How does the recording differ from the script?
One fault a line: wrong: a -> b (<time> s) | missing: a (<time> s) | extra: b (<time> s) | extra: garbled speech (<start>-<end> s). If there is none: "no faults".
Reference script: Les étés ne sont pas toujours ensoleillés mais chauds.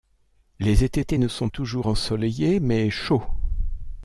extra: étés (1.0 s)
missing: pas (1.5 s)